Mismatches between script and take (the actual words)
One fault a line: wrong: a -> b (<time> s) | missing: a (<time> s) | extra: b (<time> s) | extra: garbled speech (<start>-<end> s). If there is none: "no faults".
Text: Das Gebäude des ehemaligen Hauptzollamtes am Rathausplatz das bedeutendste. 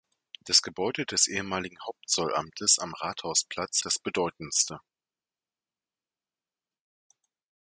no faults